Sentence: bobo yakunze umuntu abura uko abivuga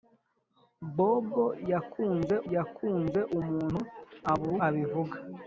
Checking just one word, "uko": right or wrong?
wrong